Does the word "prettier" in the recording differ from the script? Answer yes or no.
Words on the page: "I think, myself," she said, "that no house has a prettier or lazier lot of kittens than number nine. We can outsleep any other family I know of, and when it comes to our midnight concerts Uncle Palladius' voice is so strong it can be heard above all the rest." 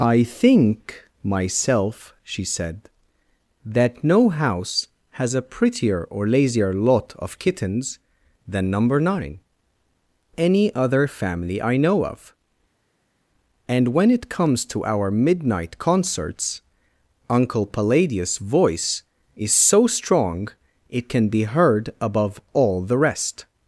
no